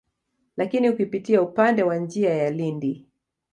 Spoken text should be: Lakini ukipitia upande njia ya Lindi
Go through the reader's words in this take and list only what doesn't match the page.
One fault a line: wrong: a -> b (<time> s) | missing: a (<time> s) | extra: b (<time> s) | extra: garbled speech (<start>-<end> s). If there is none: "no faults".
extra: wa (1.8 s)